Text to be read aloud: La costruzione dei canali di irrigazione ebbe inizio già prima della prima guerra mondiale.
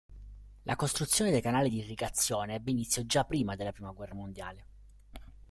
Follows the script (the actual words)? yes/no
yes